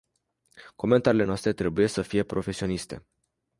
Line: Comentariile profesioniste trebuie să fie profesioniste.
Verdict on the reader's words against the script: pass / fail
fail